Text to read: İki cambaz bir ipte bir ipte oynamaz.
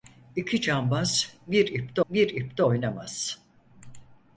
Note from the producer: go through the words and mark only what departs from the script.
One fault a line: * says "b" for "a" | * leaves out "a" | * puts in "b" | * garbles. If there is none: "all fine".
all fine